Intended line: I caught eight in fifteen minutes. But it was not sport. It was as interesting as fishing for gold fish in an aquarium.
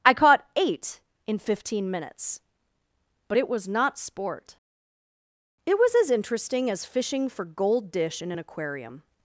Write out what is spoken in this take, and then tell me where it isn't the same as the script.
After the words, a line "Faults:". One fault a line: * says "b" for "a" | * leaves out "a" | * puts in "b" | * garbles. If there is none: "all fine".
I caught eight in fifteen minutes. But it was not sport. It was as interesting as fishing for gold dish in an aquarium.
Faults:
* says "dish" for "fish"